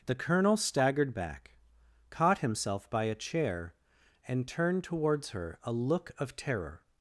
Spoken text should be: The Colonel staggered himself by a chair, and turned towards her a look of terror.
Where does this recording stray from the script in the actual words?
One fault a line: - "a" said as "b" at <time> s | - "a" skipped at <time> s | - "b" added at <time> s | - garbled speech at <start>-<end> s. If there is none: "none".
- "back caught" added at 1.1 s